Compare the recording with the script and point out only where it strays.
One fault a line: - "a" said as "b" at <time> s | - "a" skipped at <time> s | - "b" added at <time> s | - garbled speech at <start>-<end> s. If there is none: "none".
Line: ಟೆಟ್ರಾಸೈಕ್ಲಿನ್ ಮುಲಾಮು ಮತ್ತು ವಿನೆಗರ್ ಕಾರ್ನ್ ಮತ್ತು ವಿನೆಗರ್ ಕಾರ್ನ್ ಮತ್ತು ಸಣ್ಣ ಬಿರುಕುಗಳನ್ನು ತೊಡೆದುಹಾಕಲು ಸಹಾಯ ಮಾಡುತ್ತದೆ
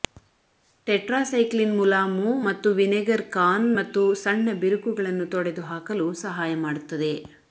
- "ವಿನೆಗರ್ ಕಾರ್ನ್ ಮತ್ತು" skipped at 4.0 s